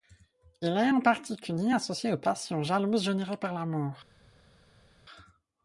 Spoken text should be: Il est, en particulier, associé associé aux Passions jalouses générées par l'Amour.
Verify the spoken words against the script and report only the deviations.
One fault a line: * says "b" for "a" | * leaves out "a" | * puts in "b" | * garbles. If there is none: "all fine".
* leaves out "associé"